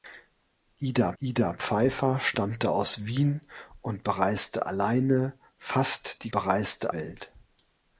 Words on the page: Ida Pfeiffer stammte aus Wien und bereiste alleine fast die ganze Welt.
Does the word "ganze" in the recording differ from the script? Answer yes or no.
yes